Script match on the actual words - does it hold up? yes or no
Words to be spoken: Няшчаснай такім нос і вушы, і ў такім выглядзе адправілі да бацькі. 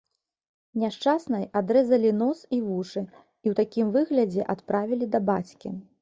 no